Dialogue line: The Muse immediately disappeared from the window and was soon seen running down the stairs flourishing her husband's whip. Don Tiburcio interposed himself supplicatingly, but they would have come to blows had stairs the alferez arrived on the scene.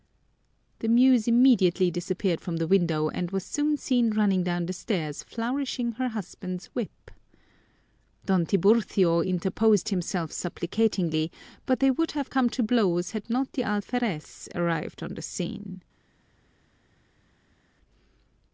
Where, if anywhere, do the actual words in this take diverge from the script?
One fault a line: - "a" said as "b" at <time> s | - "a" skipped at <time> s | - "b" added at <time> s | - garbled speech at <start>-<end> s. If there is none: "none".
- "stairs" said as "not" at 13.3 s